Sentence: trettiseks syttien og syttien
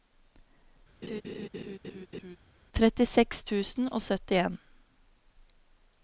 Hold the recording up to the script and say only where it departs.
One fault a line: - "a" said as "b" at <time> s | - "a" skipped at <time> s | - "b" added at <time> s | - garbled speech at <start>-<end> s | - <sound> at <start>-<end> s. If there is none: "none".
- laugh at 1.0-2.4 s
- "syttien" said as "tusen" at 3.5 s